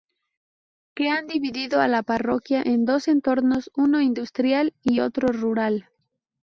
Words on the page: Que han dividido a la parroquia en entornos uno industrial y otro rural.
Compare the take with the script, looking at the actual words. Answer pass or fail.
fail